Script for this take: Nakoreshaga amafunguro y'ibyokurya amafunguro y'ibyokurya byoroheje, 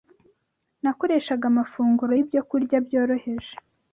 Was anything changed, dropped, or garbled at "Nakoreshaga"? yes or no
no